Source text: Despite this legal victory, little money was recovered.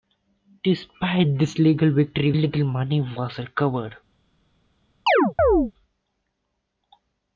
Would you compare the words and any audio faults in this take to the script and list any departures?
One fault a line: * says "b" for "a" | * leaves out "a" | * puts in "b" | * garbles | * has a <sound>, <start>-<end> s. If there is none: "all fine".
* has a chirp, 5.1-5.7 s